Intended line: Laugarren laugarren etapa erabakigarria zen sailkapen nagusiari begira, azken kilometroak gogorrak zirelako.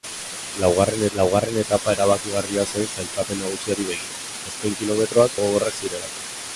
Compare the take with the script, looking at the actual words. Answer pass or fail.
pass